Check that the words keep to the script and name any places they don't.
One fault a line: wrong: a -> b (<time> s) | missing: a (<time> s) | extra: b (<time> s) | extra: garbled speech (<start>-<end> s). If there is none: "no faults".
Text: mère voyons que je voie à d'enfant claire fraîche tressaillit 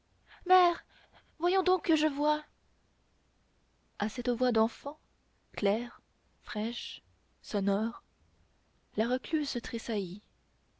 extra: donc (1.6 s)
extra: cette voix (4.1 s)
extra: sonore la recluse (7.4 s)